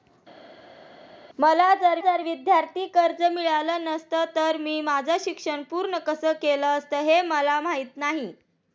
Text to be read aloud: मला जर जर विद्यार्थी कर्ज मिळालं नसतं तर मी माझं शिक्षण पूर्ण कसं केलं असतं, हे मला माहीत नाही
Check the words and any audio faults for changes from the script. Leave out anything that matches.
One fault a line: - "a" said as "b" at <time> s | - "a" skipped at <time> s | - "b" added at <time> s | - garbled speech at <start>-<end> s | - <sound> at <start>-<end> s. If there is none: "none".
none